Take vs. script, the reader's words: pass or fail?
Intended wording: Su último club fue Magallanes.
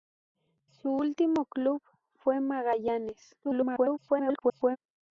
fail